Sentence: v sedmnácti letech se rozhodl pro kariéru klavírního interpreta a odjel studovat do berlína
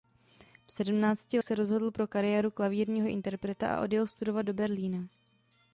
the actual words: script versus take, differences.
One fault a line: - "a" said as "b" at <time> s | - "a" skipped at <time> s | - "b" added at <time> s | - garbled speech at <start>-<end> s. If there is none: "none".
- "letech" skipped at 1.4 s